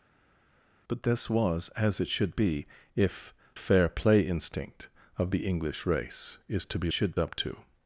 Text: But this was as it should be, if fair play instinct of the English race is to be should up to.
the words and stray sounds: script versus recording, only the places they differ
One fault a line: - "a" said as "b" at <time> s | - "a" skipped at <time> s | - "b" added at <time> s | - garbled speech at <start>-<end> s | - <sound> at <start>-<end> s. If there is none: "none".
none